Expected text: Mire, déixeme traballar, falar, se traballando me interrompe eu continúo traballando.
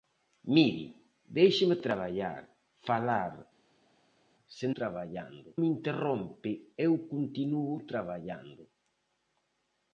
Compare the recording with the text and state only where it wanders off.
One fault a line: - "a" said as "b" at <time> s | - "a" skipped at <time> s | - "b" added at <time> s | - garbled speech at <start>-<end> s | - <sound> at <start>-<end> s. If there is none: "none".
none